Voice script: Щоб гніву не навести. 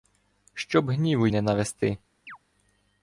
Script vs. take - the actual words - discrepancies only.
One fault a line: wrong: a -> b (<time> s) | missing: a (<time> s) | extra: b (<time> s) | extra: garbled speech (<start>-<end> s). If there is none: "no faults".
no faults